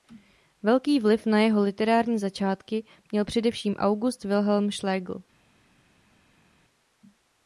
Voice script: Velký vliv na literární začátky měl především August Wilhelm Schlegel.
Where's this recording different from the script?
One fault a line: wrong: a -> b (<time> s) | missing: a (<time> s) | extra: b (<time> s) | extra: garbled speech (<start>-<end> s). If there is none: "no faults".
extra: jeho (1.4 s)